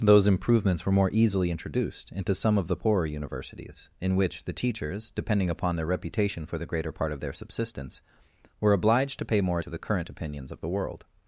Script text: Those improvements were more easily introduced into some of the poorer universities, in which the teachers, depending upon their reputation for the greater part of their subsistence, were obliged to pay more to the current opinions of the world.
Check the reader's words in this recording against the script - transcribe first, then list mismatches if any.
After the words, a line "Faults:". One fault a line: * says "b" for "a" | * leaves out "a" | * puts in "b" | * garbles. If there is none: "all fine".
Those improvements were more easily introduced into some of the poorer universities, in which the teachers, depending upon their reputation for the greater part of their subsistence, were obliged to pay more to the current opinions of the world.
Faults:
all fine